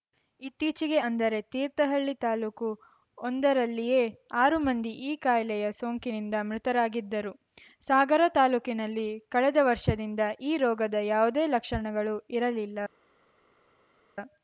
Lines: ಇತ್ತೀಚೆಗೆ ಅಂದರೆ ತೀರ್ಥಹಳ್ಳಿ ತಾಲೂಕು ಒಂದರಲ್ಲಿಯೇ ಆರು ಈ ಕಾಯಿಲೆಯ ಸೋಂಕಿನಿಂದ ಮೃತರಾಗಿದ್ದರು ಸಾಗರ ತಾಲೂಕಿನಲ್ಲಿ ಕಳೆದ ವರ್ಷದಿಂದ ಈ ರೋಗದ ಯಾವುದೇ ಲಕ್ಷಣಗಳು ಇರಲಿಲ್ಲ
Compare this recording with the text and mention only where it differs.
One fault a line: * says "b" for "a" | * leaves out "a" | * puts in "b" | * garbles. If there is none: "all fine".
* puts in "ಮಂದಿ"